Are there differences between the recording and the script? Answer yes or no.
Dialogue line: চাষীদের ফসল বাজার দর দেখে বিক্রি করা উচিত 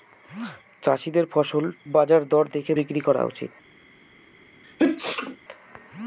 no